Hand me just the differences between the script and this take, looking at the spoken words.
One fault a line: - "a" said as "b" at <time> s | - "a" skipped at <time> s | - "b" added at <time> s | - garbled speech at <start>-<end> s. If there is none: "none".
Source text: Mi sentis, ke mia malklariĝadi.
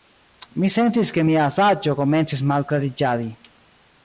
- "saĝo komencis" added at 1.5 s